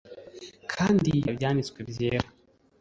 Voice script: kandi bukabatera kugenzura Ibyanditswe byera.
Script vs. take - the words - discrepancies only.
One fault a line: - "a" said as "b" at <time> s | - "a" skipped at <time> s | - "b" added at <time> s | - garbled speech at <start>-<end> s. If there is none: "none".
- "bukabatera kugenzura" skipped at 1.1 s